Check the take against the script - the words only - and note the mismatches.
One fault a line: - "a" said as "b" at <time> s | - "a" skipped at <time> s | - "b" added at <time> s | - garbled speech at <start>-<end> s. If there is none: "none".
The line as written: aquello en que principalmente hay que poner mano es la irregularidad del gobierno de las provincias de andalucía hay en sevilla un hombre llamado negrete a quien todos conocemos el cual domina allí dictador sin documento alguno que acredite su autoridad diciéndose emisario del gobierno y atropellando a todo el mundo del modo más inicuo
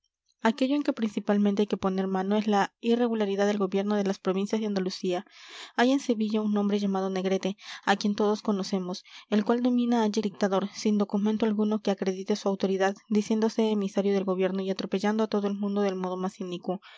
none